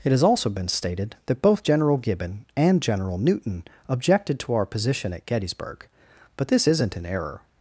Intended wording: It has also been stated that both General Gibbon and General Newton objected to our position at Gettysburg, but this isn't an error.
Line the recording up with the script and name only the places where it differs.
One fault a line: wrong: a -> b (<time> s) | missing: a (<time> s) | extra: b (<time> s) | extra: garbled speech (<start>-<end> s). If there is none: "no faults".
no faults